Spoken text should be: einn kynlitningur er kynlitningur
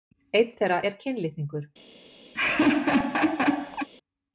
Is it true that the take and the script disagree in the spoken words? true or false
true